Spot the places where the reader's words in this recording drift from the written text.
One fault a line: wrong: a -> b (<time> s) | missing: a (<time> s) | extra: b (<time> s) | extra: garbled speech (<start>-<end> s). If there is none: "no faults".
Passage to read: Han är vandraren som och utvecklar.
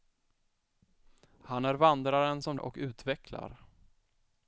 no faults